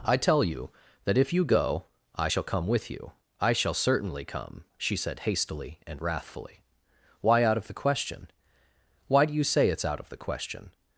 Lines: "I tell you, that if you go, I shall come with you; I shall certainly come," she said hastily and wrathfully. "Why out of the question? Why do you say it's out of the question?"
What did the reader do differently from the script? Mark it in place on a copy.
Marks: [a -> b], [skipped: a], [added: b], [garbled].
"I tell you, that if you go, I shall come with you; I shall certainly come," she said hastily and wrathfully. "Why out of the question? Why do you say it's out of the question?"